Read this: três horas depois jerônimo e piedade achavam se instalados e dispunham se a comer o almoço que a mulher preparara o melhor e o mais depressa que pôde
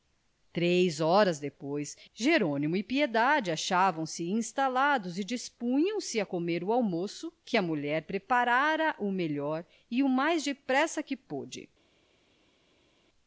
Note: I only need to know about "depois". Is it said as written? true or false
true